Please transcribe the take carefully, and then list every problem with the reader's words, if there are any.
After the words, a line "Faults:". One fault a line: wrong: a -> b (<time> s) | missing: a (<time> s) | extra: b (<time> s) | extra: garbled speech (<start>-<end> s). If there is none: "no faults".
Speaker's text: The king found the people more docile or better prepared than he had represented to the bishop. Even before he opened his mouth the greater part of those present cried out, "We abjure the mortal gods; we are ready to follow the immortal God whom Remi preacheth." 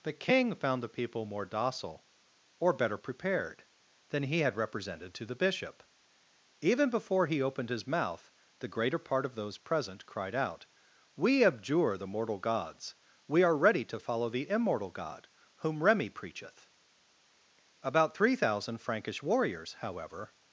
The king found the people more docile or better prepared than he had represented to the bishop. Even before he opened his mouth the greater part of those present cried out, "We abjure the mortal gods; we are ready to follow the immortal God whom Remi preacheth." About three thousand Frankish warriors, however
Faults:
extra: About three thousand Frankish warriors however (17.8 s)